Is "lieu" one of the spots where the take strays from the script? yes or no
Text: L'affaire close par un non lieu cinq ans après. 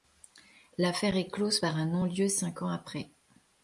no